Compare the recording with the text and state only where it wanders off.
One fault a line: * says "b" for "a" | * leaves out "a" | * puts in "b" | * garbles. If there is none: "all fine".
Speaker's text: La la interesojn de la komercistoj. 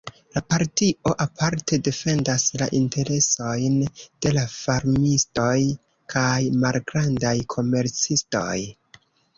* puts in "partio aparte defendas"
* puts in "farmistoj kaj malgrandaj"